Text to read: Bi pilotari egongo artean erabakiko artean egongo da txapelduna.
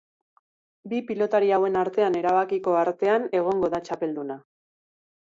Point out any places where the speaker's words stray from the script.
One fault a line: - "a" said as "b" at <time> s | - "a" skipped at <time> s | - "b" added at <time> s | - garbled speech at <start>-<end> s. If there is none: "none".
- "egongo" said as "hauen" at 1.6 s